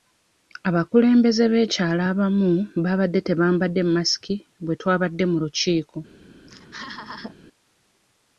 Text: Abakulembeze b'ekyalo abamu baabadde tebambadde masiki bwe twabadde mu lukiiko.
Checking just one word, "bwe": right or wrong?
right